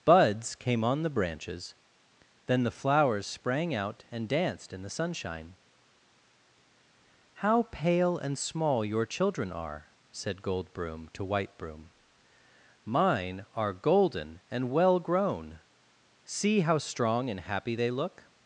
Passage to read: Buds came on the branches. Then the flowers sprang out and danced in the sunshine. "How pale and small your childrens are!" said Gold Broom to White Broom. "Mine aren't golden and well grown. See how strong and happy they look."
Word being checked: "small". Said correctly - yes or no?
yes